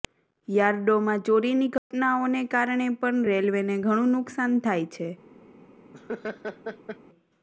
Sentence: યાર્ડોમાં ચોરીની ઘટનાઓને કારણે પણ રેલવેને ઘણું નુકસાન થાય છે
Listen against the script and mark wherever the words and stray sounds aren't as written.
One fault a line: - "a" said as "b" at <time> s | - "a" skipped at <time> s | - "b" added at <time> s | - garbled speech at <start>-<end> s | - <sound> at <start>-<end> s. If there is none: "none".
- dropout at 1.8-1.9 s
- laugh at 5.9-7.0 s